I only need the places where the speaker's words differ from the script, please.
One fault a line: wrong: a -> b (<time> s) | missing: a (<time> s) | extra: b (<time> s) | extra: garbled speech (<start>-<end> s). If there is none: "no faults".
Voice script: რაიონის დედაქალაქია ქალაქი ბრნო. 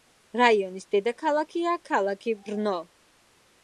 no faults